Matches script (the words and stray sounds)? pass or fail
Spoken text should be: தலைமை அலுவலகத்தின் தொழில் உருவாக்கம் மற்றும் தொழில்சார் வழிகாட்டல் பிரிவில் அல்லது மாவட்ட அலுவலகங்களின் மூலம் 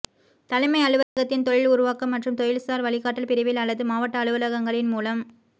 fail